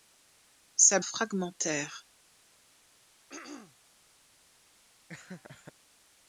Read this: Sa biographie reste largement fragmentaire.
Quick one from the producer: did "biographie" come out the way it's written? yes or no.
no